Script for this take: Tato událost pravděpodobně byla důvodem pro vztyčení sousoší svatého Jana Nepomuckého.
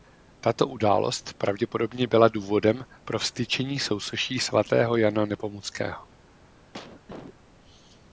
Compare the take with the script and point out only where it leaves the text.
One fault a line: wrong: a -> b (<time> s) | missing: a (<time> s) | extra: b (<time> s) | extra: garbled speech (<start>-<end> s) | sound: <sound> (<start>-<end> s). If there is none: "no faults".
sound: cough (6.7-7.3 s)